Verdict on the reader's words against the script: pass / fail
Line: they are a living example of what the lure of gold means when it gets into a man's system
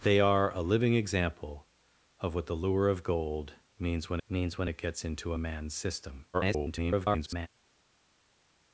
fail